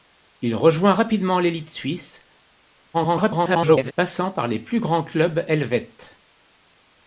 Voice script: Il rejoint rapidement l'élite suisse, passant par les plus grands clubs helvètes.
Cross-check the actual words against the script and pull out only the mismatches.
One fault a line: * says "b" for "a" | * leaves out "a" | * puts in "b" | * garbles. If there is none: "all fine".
* garbles